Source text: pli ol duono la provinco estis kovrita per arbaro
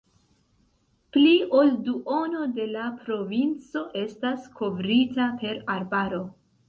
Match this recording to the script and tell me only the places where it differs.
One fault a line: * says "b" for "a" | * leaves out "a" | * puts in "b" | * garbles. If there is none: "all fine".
* puts in "de"
* says "estas" for "estis"